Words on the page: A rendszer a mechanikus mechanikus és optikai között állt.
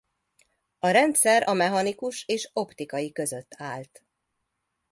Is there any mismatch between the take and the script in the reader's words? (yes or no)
yes